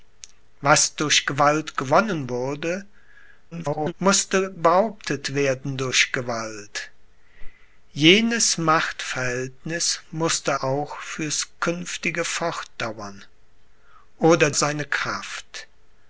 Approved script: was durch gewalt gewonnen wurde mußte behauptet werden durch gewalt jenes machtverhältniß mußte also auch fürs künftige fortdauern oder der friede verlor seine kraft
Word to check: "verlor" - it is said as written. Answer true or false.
false